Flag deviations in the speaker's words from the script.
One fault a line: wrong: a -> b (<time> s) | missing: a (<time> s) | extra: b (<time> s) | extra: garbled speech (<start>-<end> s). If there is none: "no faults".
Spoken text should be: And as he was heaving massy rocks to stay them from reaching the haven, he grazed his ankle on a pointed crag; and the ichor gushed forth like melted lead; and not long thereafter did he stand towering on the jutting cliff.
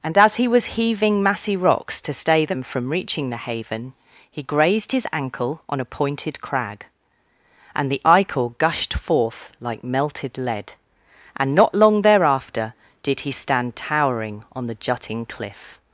no faults